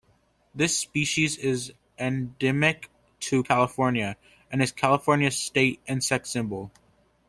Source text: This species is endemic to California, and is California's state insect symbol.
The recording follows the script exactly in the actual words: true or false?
true